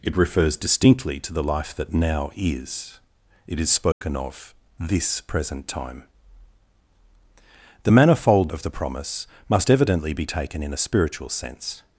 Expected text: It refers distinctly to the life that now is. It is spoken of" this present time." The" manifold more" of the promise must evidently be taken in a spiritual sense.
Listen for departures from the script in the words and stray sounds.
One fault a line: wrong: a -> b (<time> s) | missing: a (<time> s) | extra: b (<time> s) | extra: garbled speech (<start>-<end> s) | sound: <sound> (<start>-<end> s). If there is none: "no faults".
sound: dropout (3.9-4.0 s)
missing: more (8.5 s)